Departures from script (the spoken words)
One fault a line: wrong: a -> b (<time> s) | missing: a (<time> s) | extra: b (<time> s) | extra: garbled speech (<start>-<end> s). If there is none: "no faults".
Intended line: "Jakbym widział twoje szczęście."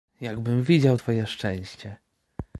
no faults